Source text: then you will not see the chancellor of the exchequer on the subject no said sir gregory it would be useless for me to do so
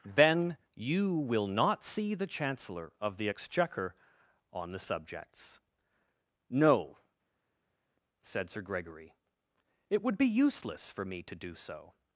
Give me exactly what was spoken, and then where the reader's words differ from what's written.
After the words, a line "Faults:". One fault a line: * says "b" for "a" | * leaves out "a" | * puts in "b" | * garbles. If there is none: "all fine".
then you will not see the chancellor of the exchequer on the subjects no said sir gregory it would be useless for me to do so
Faults:
* says "subjects" for "subject"